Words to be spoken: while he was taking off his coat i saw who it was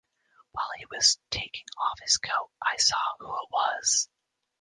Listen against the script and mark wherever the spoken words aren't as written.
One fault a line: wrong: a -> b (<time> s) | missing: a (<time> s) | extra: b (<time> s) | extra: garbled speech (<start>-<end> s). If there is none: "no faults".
no faults